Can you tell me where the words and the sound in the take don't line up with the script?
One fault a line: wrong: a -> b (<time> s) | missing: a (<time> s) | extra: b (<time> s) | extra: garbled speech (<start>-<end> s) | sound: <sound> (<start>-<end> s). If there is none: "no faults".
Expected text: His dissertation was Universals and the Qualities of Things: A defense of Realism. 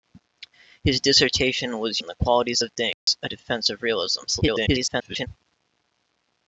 missing: Universals (2.0 s)
sound: dropout (2.9-3.1 s)
extra: garbled speech (4.3-5.3 s)